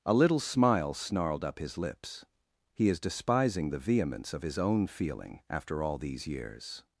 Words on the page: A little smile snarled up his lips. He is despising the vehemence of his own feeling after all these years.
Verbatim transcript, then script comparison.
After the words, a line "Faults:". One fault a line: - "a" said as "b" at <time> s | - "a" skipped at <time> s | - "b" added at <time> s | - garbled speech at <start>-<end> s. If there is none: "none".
A little smile snarled up his lips. He is despising the vehemence of his own feeling after all these years.
Faults:
none